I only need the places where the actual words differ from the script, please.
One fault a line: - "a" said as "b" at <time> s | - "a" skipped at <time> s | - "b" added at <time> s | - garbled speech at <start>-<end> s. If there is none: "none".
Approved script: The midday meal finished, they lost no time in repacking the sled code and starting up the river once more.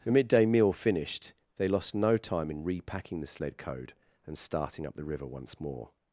none